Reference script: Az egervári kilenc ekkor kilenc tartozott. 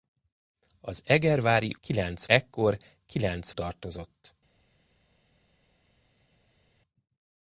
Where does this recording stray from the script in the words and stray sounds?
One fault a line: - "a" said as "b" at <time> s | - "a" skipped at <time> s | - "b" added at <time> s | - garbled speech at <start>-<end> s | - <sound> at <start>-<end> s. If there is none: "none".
none